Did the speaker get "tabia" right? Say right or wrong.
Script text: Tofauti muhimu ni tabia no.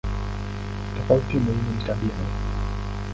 right